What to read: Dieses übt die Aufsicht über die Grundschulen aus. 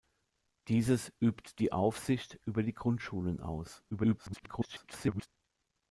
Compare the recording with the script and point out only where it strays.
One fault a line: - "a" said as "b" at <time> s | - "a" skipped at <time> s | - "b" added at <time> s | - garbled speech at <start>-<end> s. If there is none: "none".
- garbled speech at 3.9-5.3 s